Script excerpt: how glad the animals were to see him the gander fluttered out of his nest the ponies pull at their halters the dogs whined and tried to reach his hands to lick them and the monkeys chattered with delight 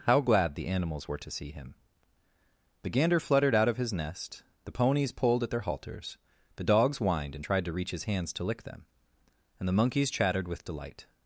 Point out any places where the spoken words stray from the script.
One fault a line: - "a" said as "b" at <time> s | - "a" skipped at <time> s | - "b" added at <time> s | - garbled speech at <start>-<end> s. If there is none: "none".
- "pull" said as "pulled" at 5.1 s